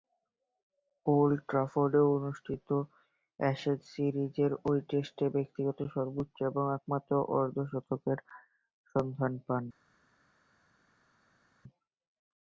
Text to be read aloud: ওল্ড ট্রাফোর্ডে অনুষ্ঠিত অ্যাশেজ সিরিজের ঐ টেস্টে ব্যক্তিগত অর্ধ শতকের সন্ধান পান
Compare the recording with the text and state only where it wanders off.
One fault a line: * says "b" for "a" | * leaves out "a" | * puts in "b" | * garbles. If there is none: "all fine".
* puts in "সর্বোচ্চ ও একমাত্র"